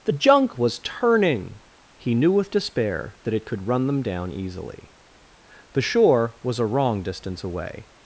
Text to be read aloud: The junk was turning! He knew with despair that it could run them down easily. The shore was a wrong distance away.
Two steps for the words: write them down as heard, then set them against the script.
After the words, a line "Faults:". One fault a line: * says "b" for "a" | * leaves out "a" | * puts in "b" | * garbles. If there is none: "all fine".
The junk was turning! He knew with despair that it could run them down easily. The shore was a wrong distance away.
Faults:
all fine